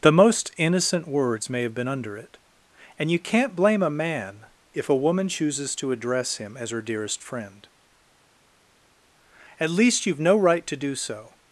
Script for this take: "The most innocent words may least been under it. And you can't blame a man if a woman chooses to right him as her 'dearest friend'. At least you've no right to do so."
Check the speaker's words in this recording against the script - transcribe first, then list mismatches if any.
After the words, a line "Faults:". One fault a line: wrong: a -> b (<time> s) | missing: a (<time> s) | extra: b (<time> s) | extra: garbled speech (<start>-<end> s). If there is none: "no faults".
"The most innocent words may have been under it. And you can't blame a man if a woman chooses to address him as her 'dearest friend'. At least you've no right to do so."
Faults:
wrong: least -> have (1.6 s)
wrong: right -> address (5.9 s)